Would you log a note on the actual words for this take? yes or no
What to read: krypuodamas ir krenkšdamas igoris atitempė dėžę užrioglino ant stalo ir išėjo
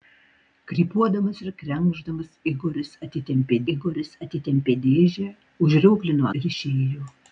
yes